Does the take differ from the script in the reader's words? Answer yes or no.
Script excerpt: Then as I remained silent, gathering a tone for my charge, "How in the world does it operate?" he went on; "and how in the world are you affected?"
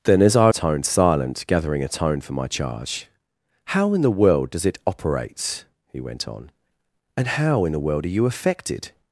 yes